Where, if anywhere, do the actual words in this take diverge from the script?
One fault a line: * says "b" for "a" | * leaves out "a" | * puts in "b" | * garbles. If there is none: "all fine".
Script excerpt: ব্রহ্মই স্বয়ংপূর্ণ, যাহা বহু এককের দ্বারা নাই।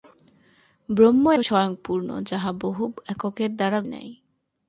all fine